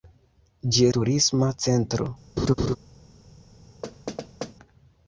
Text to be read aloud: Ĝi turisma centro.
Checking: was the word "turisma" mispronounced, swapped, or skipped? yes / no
no